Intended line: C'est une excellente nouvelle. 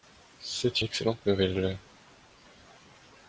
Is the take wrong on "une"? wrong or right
wrong